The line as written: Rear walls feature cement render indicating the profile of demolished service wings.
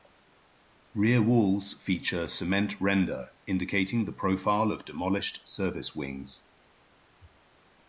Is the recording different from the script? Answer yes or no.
no